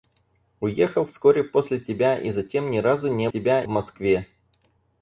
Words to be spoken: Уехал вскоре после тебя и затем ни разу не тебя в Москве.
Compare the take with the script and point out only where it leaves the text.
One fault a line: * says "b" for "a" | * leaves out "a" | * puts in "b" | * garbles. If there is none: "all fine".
all fine